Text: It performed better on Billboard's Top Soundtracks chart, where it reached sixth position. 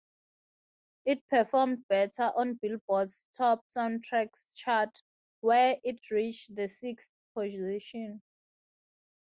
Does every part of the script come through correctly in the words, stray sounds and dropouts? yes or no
no